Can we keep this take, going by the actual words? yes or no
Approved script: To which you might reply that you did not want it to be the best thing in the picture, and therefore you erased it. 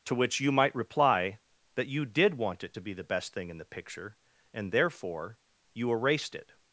no